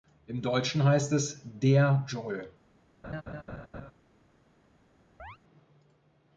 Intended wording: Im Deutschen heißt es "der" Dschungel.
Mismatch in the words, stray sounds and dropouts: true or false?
true